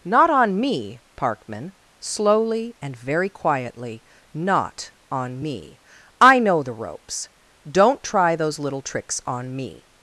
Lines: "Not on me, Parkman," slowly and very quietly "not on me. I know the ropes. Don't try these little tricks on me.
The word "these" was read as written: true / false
false